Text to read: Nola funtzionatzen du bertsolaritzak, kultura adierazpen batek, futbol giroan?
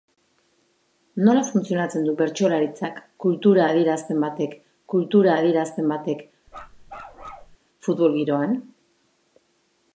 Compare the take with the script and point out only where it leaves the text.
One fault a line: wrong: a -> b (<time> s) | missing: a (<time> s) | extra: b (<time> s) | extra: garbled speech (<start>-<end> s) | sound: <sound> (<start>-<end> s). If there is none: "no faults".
extra: kultura adierazpen batek (4.9 s)
sound: bark (6.5-7.6 s)